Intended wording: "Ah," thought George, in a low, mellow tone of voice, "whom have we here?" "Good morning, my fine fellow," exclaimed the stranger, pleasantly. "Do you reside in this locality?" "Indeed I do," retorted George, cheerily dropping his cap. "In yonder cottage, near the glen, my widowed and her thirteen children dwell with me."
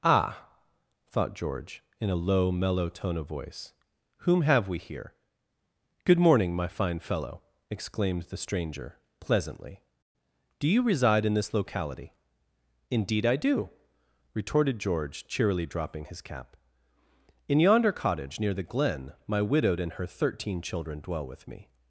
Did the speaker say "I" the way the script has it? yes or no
yes